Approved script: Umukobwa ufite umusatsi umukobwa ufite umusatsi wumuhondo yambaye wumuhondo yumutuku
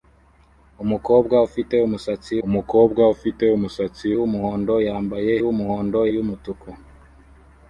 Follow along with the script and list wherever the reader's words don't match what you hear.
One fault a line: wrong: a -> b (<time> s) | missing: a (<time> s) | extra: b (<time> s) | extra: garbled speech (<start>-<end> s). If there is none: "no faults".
no faults